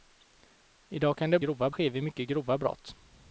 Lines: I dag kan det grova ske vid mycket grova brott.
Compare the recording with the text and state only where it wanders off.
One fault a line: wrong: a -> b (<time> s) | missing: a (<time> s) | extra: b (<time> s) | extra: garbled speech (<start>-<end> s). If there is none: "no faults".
no faults